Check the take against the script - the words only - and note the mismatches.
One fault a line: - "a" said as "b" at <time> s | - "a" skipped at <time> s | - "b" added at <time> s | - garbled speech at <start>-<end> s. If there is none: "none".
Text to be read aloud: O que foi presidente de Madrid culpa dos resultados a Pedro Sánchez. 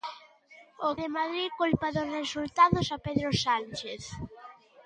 - "que foi presidente" skipped at 0.9 s